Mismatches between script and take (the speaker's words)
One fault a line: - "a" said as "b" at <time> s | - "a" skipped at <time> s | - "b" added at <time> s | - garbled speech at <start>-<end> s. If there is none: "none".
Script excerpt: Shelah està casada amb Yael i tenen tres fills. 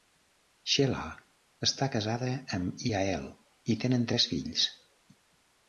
none